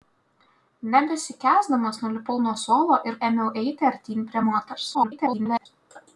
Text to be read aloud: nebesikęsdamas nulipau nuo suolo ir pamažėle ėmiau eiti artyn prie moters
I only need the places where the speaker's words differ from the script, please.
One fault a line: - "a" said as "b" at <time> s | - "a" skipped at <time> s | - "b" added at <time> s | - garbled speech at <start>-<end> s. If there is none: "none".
- "pamažėle" skipped at 3.2 s
- garbled speech at 4.9-5.7 s